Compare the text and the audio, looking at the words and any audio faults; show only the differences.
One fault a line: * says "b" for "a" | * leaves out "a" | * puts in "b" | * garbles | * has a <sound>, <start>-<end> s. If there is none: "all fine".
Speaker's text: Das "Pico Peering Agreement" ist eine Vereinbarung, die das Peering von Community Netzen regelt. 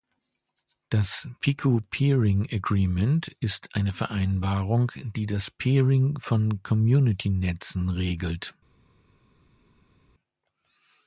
all fine